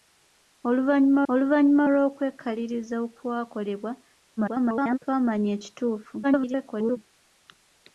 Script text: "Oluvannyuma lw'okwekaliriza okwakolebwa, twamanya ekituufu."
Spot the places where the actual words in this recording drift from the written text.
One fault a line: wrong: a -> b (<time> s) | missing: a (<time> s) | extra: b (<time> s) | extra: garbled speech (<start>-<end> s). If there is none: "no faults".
extra: oluvannyuma (1.3 s)
extra: garbled speech (4.4-5.0 s)
extra: garbled speech (6.2-7.0 s)